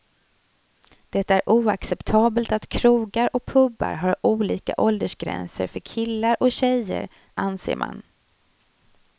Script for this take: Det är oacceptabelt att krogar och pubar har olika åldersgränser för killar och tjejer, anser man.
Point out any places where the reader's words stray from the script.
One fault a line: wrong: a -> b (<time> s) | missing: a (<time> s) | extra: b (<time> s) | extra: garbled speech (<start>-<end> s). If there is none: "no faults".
no faults